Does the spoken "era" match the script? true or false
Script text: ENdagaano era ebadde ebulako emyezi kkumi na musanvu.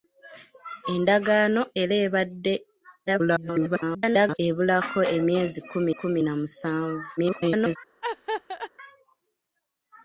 true